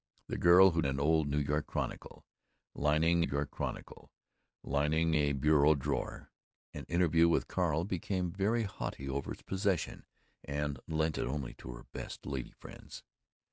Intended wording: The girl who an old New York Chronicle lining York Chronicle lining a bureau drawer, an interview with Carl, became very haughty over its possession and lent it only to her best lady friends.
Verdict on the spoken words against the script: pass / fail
pass